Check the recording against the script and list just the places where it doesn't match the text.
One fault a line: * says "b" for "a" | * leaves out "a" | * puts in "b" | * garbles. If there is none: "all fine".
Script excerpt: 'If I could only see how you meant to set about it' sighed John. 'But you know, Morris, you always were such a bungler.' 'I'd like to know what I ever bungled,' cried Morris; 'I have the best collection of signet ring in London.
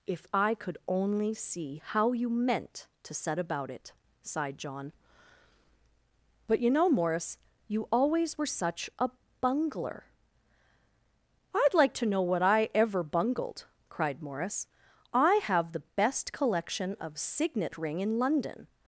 all fine